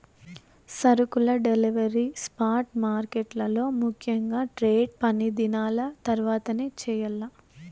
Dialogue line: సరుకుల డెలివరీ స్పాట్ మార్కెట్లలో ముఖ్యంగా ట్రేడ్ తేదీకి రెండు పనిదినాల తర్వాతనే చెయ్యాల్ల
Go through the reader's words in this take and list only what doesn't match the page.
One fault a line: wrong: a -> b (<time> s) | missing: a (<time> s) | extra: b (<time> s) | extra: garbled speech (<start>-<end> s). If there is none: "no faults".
missing: తేదీకి రెండు (5.0 s)